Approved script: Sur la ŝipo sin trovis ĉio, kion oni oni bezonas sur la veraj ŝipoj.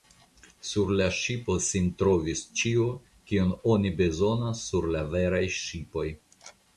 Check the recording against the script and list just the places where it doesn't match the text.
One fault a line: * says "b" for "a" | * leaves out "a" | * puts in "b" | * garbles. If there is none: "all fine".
* leaves out "oni"